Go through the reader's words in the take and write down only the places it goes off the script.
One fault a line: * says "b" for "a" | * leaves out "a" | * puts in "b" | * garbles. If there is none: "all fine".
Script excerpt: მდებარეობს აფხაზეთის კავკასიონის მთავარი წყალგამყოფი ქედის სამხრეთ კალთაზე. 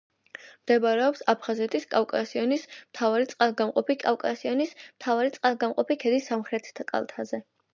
* puts in "კავკასიონის მთავარი წყალგამყოფი"